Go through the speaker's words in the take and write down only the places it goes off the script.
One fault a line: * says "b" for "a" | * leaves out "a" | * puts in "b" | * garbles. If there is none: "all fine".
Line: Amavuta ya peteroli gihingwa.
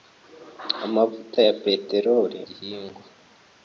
all fine